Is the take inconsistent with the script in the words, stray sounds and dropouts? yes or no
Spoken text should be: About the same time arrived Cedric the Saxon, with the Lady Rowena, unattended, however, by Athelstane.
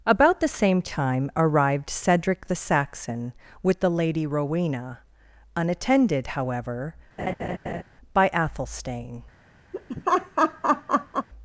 yes